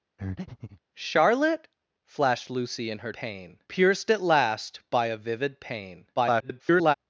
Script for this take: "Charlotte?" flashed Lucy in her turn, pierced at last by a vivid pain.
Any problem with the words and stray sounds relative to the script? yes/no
yes